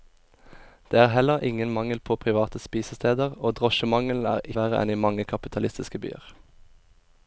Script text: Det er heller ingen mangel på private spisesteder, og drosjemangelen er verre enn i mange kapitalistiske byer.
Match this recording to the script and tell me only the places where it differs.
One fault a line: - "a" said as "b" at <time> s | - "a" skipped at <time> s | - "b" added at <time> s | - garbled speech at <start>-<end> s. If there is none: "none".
none